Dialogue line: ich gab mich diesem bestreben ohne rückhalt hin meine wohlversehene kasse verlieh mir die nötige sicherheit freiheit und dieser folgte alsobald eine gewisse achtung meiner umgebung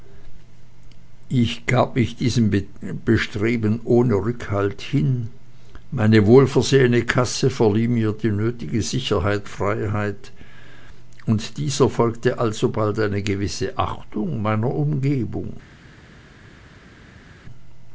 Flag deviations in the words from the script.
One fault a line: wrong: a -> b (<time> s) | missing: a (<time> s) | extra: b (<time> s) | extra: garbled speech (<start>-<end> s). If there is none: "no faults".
no faults